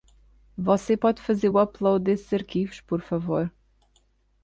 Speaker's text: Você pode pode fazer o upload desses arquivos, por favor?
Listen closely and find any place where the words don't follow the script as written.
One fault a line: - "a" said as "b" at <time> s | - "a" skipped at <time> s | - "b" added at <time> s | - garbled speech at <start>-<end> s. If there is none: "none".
- "pode" skipped at 1.2 s